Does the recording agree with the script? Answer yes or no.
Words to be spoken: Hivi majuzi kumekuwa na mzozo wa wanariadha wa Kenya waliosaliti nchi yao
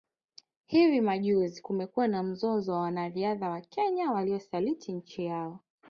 yes